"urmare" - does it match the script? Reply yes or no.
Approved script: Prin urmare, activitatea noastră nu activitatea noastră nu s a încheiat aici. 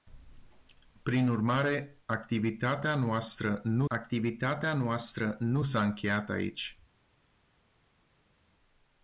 yes